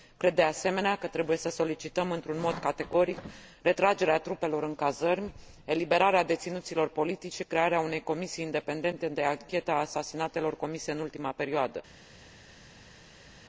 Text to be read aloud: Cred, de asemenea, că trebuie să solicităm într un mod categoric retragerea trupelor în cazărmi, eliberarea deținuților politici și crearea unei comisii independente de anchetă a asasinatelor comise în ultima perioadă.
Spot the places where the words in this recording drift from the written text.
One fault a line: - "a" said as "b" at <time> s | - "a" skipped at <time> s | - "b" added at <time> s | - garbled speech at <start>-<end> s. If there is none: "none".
none